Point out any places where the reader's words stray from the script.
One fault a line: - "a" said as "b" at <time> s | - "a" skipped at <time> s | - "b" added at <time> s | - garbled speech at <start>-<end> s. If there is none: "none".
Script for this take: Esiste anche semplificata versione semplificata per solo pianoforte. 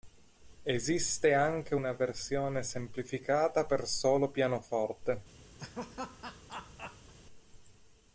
- "semplificata" said as "una" at 1.7 s